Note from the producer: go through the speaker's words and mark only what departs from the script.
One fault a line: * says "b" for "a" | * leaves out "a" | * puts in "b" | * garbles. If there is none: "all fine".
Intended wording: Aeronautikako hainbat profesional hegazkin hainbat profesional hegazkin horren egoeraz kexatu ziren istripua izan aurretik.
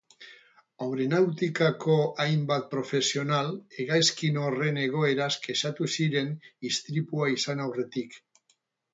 * leaves out "hainbat profesional hegazkin"